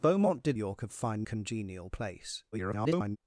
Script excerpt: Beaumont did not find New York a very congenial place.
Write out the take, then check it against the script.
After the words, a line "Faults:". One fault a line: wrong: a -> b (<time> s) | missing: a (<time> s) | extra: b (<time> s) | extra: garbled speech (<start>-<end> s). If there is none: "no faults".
Beaumont did York a find congenial place. [garbled]
Faults:
missing: not find New (0.6 s)
wrong: very -> find (0.9 s)
extra: garbled speech (2.5-3.2 s)